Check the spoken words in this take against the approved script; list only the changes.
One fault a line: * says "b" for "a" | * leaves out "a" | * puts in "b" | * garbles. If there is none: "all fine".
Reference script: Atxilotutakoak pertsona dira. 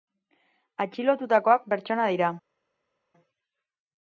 all fine